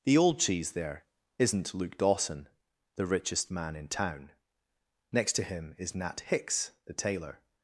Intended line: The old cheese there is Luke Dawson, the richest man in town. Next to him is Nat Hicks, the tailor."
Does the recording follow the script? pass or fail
fail